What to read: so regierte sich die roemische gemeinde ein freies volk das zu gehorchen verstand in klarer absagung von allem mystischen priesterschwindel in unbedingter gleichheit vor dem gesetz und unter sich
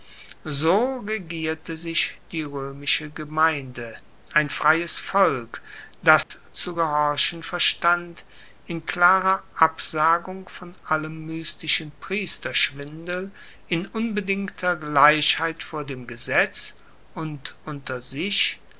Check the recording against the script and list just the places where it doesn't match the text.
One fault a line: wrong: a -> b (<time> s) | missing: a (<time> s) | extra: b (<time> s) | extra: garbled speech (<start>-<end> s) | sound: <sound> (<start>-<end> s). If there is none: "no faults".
sound: dropout (6.2-6.3 s)